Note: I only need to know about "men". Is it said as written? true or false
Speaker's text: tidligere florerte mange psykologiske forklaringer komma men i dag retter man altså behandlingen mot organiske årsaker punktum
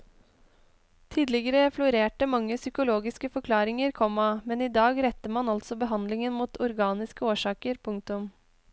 true